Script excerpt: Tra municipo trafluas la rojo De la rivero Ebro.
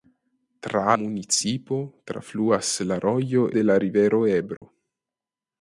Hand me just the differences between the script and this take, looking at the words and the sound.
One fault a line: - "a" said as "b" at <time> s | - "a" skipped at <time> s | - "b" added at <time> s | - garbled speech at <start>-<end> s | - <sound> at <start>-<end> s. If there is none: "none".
- dropout at 4.6-4.6 s